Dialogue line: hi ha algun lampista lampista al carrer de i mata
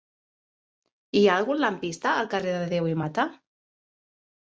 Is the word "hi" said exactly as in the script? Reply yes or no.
yes